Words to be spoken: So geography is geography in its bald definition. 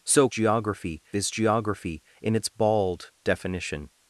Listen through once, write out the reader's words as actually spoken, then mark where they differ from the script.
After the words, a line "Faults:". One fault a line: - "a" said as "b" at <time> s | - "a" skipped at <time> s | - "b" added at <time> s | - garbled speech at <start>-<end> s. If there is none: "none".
So geography is geography in its bald definition.
Faults:
none